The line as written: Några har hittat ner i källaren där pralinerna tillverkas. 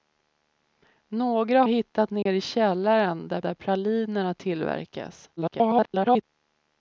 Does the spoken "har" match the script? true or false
false